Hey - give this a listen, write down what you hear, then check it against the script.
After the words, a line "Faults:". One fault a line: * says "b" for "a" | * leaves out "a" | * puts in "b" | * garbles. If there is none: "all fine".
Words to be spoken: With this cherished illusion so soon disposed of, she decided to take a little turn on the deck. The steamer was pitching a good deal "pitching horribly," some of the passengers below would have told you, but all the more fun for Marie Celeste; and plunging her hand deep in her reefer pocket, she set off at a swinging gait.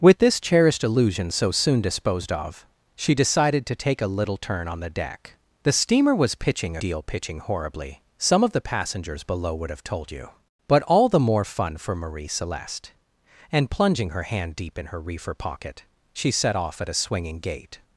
With this cherished illusion so soon disposed of, she decided to take a little turn on the deck. The steamer was pitching deal "pitching horribly," some of the passengers below would have told you, but all the more fun for Marie Celeste; and plunging her hand deep in her reefer pocket, she set off at a swinging gait.
Faults:
* leaves out "a good"